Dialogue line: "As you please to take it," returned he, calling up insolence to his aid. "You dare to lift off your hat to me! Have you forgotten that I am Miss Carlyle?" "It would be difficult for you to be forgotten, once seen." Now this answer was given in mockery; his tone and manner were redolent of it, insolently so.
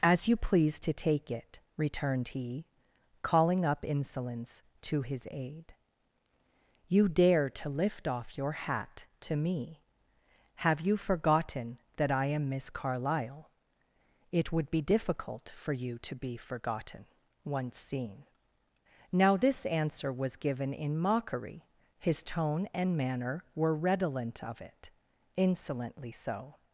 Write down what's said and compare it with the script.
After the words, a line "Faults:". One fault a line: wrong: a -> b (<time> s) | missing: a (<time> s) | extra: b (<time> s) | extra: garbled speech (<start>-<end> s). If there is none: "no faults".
"As you please to take it," returned he, calling up insolence to his aid. "You dare to lift off your hat to me! Have you forgotten that I am Miss Carlyle?" "It would be difficult for you to be forgotten, once seen." Now this answer was given in mockery; his tone and manner were redolent of it, insolently so.
Faults:
no faults